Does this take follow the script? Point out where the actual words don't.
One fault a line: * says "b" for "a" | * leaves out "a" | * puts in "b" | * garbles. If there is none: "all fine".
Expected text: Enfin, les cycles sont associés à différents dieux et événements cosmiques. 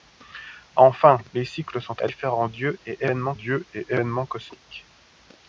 * leaves out "associés"
* puts in "dieux et événements"